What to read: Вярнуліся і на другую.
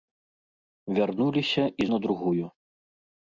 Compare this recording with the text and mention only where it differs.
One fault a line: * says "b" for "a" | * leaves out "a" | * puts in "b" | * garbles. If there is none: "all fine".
all fine